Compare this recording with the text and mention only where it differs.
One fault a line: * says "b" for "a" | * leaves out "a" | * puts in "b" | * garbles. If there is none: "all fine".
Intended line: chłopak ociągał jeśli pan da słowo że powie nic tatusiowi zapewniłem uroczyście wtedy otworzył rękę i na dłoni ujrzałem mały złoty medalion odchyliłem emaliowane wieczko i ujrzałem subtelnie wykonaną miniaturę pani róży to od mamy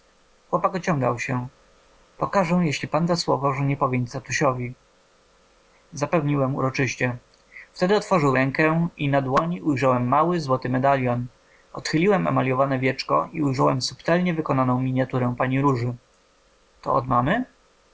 * puts in "się pokażę"
* puts in "nie"